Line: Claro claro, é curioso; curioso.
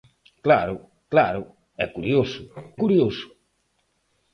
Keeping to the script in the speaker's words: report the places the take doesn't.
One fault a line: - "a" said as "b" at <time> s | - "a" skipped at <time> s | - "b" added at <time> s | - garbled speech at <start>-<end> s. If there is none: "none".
none